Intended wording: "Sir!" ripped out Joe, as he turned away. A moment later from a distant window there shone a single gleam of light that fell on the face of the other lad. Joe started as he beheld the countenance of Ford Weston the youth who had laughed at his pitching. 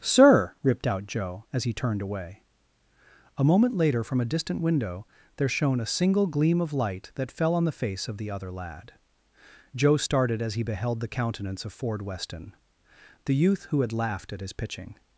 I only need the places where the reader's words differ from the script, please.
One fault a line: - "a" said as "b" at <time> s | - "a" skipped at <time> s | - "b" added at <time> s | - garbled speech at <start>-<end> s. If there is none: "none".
none